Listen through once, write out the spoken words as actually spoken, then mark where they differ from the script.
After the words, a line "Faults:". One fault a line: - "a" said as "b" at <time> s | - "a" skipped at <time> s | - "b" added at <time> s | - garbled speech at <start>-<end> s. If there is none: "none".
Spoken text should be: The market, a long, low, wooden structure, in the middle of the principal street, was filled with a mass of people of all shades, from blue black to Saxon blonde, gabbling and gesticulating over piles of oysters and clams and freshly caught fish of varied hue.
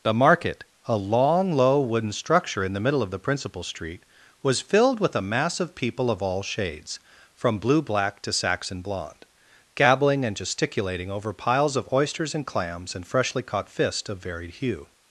The market, a long, low, wooden structure, in the middle of the principal street, was filled with a mass of people of all shades, from blue black to Saxon blonde, gabbling and gesticulating over piles of oysters and clams and freshly caught fist of varied hue.
Faults:
- "fish" said as "fist" at 13.7 s